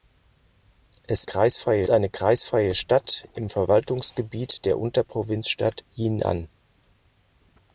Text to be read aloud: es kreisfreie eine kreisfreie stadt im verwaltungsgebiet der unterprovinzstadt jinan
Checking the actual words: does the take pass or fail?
pass